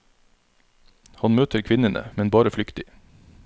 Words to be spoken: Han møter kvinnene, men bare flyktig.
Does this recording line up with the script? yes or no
yes